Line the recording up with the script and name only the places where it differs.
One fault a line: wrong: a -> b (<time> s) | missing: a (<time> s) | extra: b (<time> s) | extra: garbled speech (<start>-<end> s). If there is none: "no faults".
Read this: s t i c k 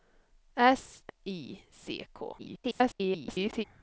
missing: t (1.0 s)
extra: garbled speech (2.4-3.6 s)